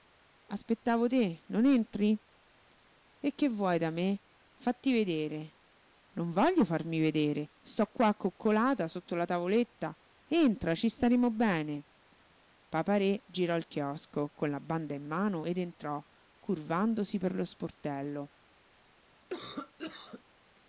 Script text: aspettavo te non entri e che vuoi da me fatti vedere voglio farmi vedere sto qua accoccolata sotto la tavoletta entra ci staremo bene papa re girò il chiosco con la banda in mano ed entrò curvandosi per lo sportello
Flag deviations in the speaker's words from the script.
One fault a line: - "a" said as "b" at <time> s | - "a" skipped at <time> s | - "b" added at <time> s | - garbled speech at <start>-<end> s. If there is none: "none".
- "non" added at 6.1 s